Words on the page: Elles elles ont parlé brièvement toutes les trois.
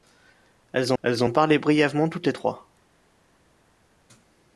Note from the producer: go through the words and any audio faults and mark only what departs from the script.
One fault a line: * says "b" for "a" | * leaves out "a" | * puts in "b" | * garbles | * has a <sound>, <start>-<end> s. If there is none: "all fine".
all fine